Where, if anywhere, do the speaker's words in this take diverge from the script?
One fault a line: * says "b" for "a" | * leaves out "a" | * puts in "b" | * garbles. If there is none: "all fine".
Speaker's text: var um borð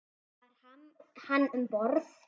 * puts in "hann"